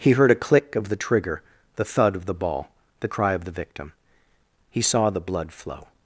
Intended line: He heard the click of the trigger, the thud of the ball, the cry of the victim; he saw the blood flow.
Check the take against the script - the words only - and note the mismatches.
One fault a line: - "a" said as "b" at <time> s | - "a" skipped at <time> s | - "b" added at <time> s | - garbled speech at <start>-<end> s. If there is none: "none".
- "the" said as "a" at 0.3 s